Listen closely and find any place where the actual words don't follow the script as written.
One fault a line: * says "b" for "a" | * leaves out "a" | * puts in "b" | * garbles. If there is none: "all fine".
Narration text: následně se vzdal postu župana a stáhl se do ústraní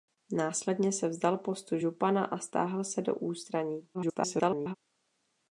* garbles